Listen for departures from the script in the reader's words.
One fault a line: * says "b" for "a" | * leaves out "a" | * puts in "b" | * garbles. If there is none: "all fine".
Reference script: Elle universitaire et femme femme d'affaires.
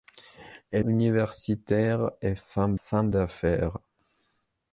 all fine